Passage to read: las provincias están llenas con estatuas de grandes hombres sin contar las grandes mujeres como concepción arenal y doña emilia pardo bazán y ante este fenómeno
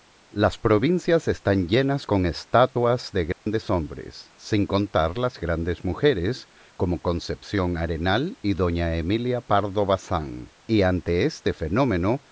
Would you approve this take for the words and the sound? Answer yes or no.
no